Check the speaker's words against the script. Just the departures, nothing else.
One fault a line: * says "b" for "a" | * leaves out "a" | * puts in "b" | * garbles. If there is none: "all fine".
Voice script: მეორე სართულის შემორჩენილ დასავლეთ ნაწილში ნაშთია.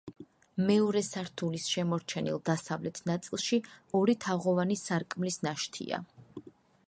* puts in "ორი თაღოვანი სარკმლის"